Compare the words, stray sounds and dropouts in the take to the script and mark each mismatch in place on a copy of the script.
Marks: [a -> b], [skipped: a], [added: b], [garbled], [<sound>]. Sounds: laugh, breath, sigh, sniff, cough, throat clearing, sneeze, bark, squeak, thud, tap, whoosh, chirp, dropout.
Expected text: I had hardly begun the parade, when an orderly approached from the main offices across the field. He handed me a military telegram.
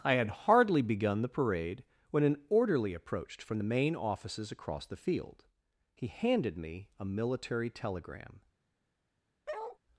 I had hardly begun the parade, when an orderly approached from the main offices across the field. He handed me a military telegram. [bark]